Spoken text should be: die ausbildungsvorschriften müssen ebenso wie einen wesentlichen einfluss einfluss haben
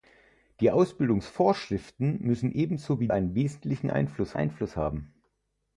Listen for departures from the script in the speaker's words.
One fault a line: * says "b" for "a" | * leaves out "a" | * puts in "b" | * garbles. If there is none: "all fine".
all fine